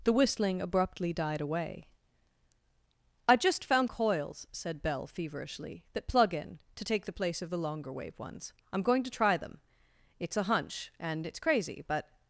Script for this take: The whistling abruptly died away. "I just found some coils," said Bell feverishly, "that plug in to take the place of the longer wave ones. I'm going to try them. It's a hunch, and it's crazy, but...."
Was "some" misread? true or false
true